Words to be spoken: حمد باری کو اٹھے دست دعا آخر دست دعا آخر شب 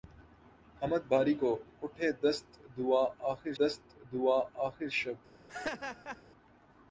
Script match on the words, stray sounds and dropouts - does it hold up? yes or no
no